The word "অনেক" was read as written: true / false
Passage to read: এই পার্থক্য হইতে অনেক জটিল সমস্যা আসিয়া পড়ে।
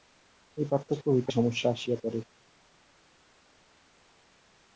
false